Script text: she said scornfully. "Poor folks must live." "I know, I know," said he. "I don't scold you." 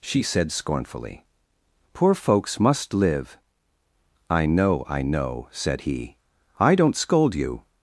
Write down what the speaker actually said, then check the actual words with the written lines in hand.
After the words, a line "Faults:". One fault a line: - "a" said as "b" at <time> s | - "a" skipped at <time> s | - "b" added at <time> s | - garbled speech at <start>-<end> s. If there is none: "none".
she said scornfully. "Poor folks must live." "I know, I know," said he. "I don't scold you."
Faults:
none